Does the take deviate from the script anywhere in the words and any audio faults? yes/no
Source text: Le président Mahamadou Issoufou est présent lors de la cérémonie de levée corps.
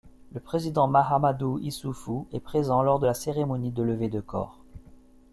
yes